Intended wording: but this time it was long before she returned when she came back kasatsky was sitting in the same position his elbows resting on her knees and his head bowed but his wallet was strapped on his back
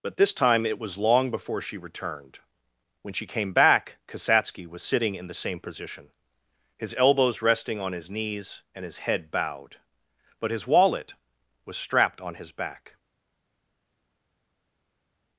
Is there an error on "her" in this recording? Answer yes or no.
yes